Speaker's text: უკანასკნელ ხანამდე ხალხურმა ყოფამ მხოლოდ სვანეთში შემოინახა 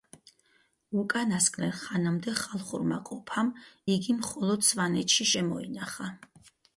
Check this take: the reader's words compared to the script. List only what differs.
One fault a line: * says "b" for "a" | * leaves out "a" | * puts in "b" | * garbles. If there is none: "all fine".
* puts in "იგი"